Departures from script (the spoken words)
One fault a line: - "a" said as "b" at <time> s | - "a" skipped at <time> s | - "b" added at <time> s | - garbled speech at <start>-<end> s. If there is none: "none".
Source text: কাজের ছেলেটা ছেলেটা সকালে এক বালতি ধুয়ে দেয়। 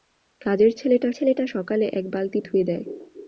none